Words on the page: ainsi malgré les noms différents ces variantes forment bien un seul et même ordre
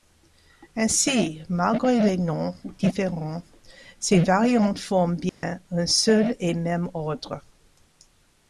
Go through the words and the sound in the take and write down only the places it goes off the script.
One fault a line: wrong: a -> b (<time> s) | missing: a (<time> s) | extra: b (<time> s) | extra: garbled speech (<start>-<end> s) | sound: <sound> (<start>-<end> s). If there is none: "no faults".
sound: dropout (5.3-5.4 s)